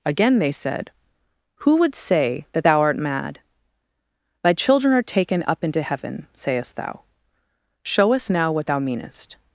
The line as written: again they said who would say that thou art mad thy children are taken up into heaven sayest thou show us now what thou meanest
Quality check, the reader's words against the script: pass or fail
pass